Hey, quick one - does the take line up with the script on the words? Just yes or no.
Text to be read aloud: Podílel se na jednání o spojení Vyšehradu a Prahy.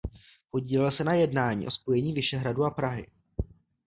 yes